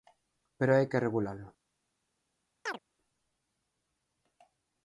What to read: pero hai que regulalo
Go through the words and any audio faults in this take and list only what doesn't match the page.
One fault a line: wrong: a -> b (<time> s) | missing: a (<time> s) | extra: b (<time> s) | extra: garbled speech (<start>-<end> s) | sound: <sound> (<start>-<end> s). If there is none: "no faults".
sound: chirp (2.7-2.8 s)